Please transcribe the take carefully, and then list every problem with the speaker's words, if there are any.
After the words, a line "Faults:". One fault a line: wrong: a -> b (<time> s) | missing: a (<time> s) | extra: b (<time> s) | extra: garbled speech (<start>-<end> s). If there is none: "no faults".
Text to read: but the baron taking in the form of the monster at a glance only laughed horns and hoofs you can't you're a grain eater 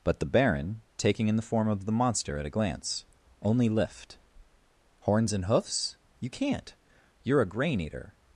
but the baron taking in the form of the monster at a glance only lift horns and hoofs you can't you're a grain eater
Faults:
wrong: laughed -> lift (3.7 s)